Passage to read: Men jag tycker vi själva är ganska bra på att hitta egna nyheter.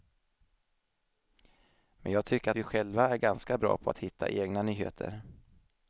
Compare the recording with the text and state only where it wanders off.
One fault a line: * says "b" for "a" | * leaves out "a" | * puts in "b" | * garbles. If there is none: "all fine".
all fine